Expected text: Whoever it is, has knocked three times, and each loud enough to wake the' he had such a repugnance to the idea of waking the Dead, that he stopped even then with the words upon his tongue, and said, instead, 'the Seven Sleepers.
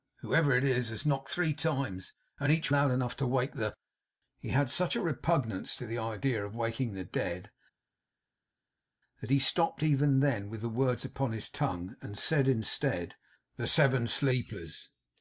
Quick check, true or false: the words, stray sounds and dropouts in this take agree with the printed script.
true